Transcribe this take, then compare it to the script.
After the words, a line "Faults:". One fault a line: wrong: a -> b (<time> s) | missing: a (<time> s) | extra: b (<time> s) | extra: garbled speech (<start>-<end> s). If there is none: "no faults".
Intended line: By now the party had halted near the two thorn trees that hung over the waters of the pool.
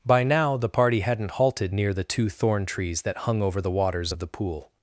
By now the party hadn't halted near the two thorn trees that hung over the waters of the pool.
Faults:
wrong: had -> hadn't (1.0 s)